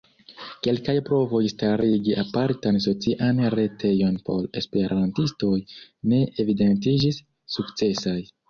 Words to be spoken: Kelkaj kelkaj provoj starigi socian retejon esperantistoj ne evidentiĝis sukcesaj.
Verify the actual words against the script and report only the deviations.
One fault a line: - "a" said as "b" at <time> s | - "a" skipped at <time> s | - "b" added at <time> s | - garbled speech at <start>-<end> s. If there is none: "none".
- "kelkaj" skipped at 0.9 s
- "apartan" added at 2.2 s
- "por" added at 4.3 s